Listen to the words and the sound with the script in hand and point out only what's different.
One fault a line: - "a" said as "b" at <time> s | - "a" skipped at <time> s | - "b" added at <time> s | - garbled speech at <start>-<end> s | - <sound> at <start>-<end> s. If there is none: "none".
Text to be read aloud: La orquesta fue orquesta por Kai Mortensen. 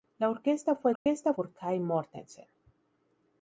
- dropout at 1.0-1.1 s